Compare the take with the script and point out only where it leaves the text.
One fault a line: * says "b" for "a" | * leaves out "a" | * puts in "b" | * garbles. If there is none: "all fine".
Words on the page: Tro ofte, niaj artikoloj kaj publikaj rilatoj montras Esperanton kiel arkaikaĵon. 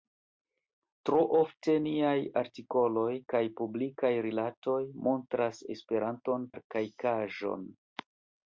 * leaves out "kiel"